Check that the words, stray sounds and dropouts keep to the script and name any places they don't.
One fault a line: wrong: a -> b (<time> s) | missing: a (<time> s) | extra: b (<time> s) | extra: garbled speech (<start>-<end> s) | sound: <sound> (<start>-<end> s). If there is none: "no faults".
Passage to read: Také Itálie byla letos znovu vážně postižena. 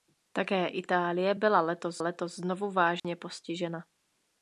extra: letos (2.0 s)
sound: dropout (3.0-3.0 s)